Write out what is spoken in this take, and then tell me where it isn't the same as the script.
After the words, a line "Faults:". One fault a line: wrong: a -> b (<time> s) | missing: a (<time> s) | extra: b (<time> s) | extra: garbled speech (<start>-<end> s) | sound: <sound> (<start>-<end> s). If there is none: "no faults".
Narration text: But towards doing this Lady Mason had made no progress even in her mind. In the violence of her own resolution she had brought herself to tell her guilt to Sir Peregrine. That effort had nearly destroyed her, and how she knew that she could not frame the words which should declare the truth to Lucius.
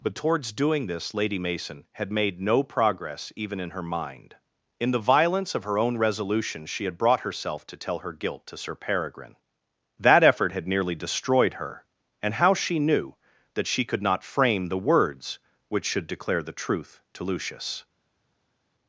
But towards doing this Lady Mason had made no progress even in her mind. In the violence of her own resolution she had brought herself to tell her guilt to Sir Peregrine. That effort had nearly destroyed her, and how she knew that she could not frame the words which should declare the truth to Lucius.
Faults:
no faults